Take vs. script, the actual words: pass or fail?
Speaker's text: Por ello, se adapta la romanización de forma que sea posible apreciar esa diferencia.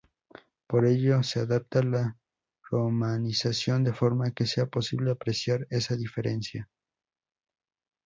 pass